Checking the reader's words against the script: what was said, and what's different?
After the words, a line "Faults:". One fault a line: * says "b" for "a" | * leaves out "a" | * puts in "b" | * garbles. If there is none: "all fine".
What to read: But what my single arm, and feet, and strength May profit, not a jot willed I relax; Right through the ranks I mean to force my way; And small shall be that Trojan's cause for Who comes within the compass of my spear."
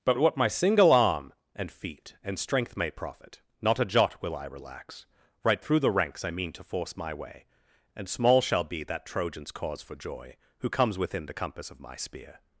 But what my single arm, and feet, and strength May profit, not a jot will I relax; Right through the ranks I mean to force my way; And small shall be that Trojan's cause for joy, Who comes within the compass of my spear."
Faults:
* says "will" for "willed"
* puts in "joy"